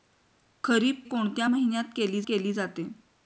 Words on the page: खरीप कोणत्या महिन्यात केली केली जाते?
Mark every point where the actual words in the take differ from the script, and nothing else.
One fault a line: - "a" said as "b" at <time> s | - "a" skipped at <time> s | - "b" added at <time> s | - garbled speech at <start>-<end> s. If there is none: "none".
none